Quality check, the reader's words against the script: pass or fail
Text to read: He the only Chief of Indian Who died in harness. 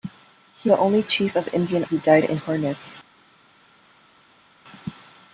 pass